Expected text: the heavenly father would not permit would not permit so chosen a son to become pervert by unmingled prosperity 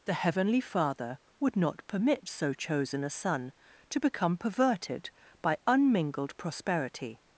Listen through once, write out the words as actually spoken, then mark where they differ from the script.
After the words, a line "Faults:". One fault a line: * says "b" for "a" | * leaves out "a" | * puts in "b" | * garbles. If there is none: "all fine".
the heavenly father would not permit so chosen a son to become perverted by unmingled prosperity
Faults:
* leaves out "would not permit"
* says "perverted" for "pervert"